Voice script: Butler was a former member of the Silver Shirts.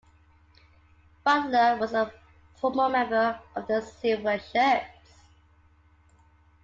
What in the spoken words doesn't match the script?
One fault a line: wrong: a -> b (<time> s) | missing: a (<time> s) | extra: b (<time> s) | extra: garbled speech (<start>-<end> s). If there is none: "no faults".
no faults